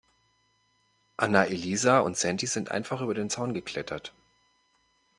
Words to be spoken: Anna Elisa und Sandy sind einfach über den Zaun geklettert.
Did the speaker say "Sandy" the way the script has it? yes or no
yes